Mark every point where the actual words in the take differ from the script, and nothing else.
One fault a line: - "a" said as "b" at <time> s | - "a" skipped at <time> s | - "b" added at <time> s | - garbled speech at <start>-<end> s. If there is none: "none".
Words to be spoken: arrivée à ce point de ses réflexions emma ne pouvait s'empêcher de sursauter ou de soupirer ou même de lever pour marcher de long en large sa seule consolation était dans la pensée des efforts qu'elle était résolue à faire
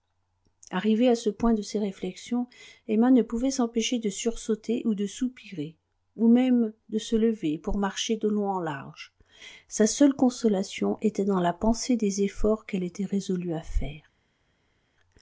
- "se" added at 7.0 s